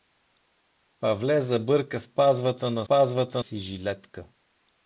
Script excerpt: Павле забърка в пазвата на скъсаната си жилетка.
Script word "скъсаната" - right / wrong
wrong